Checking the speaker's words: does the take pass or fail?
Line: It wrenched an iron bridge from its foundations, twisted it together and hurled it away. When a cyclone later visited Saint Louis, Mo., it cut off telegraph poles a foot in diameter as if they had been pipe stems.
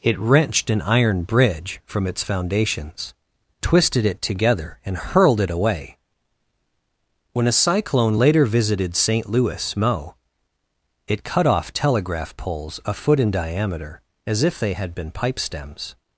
pass